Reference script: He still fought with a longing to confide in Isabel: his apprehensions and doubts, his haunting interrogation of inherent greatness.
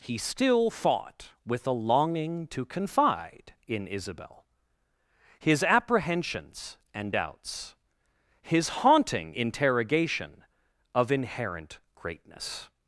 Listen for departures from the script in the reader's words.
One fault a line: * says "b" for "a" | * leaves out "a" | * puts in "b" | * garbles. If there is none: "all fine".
all fine